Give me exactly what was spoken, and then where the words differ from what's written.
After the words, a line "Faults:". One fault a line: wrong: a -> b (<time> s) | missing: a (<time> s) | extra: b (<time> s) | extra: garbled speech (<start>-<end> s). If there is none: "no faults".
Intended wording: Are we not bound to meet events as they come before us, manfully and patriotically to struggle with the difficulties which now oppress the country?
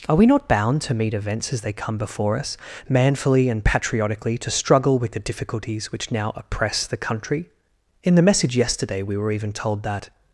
Are we not bound to meet events as they come before us, manfully and patriotically to struggle with the difficulties which now oppress the country? In the message yesterday, we were even told that
Faults:
extra: In the message yesterday we were even told that (8.0 s)